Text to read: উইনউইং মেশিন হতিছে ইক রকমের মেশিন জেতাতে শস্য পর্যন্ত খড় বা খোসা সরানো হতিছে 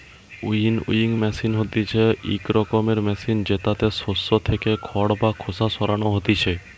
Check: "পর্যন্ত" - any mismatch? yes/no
yes